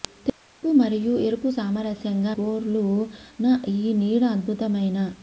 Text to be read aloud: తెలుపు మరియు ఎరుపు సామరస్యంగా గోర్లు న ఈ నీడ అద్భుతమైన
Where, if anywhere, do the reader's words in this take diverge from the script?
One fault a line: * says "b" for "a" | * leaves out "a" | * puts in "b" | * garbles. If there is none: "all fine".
all fine